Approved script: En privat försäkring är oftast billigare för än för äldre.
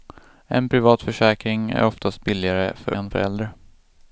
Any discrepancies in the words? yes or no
no